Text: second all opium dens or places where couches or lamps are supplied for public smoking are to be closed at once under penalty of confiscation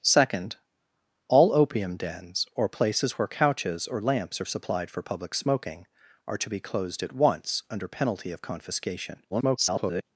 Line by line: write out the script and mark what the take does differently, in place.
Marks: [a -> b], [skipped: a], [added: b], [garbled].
second all opium dens or places where couches or lamps are supplied for public smoking are to be closed at once under penalty of confiscation [garbled]